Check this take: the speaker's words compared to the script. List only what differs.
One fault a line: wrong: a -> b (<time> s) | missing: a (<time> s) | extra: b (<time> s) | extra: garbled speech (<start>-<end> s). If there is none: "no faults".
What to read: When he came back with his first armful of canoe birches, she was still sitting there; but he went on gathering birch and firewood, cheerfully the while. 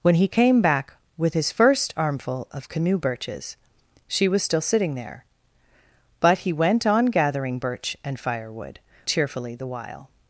no faults